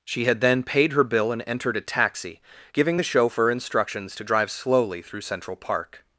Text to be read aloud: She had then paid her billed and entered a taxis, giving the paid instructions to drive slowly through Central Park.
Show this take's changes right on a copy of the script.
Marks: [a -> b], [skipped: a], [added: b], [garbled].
She had then paid her [billed -> bill] and entered a [taxis, -> taxi] giving the [paid -> chauffeur] instructions to drive slowly through Central Park.